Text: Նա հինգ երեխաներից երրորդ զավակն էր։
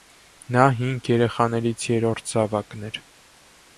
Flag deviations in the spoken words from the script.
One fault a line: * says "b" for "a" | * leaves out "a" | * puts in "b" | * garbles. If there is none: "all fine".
all fine